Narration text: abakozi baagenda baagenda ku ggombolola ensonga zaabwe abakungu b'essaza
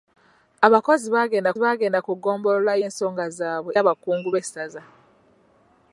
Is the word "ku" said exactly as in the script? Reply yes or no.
yes